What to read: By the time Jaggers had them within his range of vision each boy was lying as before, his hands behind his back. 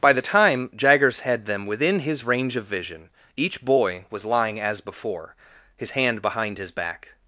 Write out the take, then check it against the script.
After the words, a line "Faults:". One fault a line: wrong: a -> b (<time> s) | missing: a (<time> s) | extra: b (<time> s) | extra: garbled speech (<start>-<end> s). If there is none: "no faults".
By the time Jaggers had them within his range of vision each boy was lying as before, his hand behind his back.
Faults:
wrong: hands -> hand (5.9 s)